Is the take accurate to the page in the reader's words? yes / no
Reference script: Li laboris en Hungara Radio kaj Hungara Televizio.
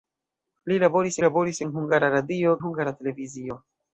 no